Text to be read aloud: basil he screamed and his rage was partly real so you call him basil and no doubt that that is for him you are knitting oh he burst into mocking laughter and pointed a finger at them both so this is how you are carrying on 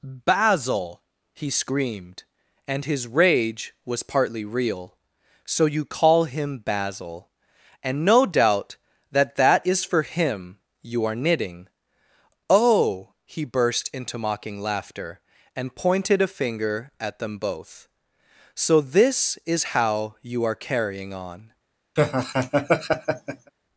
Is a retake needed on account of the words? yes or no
no